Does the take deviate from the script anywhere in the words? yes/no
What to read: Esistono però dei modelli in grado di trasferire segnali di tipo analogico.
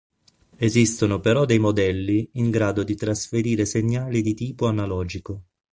no